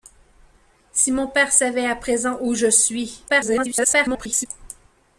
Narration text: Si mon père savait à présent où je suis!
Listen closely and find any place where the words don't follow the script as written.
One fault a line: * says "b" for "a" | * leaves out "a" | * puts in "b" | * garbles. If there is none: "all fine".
* garbles